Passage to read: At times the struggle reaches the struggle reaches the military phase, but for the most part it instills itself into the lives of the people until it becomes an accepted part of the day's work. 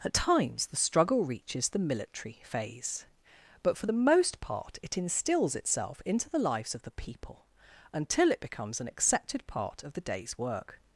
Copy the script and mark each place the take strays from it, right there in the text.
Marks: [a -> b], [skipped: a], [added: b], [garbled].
At times the struggle reaches the [skipped: struggle reaches the] military phase, but for the most part it instills itself into the lives of the people until it becomes an accepted part of the day's work.